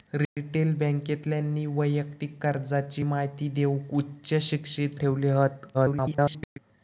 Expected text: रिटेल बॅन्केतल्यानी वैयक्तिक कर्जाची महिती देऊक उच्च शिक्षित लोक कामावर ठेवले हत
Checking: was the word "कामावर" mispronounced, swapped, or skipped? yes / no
yes